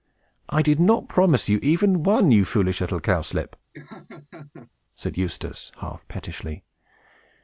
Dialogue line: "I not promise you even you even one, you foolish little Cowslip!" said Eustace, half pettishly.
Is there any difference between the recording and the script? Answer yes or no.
yes